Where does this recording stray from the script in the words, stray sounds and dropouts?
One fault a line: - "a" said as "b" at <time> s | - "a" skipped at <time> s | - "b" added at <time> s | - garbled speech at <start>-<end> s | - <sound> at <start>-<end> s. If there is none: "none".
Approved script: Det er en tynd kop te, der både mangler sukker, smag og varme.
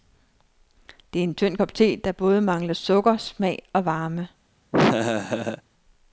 - laugh at 4.7-5.6 s